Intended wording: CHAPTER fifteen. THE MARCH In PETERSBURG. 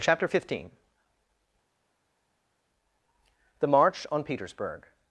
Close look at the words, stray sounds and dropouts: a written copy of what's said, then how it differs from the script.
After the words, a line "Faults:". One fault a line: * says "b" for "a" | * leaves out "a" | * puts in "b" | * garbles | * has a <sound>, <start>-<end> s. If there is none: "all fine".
CHAPTER fifteen. THE MARCH ON PETERSBURG.
Faults:
* says "ON" for "In"